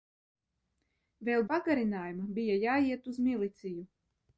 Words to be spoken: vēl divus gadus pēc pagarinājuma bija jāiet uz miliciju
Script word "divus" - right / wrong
wrong